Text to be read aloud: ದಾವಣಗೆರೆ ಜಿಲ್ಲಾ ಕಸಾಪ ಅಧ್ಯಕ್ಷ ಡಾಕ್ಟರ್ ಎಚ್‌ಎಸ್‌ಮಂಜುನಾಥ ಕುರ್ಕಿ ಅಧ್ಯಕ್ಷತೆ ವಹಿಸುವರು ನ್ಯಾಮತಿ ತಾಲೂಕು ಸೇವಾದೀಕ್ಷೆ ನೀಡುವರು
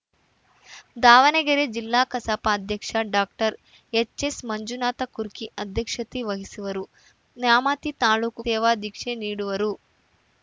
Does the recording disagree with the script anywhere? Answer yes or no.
no